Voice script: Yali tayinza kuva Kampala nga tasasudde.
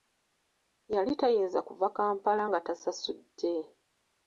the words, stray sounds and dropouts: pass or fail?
pass